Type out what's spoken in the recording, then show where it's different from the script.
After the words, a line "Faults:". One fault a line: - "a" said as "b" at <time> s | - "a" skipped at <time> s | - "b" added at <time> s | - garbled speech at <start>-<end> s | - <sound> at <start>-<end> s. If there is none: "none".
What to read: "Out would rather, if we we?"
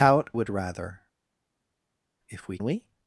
"Out would rather, if we we?"
Faults:
none